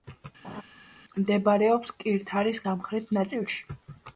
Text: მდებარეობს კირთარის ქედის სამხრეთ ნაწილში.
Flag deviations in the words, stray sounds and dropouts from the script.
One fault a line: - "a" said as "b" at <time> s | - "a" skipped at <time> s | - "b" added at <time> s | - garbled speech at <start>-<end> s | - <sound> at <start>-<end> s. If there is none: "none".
- laugh at 0.4-0.6 s
- "ქედის" skipped at 2.6 s